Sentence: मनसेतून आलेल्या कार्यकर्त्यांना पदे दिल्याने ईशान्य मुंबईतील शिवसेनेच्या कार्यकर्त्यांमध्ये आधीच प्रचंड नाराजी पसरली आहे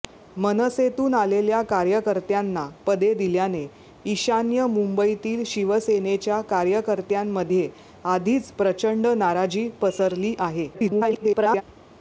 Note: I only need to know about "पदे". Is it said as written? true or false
true